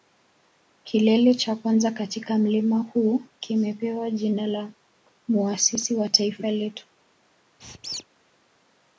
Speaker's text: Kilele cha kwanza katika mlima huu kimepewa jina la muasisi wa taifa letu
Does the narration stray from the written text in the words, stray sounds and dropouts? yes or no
yes